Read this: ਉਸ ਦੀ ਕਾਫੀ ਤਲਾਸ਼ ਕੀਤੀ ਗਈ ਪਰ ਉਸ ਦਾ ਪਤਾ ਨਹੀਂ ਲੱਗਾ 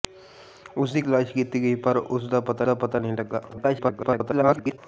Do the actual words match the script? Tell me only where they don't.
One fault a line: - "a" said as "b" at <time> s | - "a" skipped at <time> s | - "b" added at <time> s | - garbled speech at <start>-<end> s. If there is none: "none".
- "ਕਾਫੀ" skipped at 1.0 s
- "ਦਾ ਪਤਾ" added at 2.6 s
- garbled speech at 3.5-4.8 s